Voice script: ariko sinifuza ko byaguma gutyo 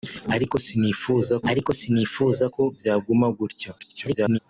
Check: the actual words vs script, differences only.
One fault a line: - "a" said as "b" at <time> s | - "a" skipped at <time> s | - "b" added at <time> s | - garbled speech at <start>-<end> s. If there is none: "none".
- "ariko sinifuza" added at 1.5 s
- garbled speech at 3.8-4.4 s